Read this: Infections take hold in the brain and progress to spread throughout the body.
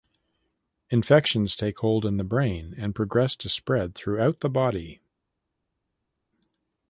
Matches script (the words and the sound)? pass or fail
pass